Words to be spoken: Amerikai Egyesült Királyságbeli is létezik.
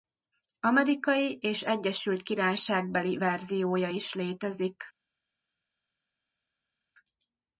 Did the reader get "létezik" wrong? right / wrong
right